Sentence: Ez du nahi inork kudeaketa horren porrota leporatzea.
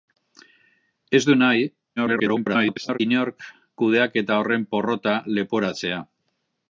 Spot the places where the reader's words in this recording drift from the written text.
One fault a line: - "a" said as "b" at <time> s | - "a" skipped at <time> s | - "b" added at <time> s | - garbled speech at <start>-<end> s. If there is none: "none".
- garbled speech at 2.0-3.0 s